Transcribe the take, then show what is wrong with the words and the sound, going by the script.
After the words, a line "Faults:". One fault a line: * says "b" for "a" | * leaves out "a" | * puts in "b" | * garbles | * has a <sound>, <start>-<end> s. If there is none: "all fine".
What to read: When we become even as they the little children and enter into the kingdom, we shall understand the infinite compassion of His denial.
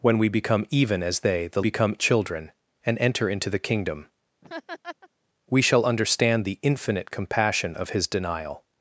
When we become even as they the become children and enter into the kingdom, we shall understand the infinite compassion of His denial.
Faults:
* says "become" for "little"
* has a laugh, 4.4-5.1 s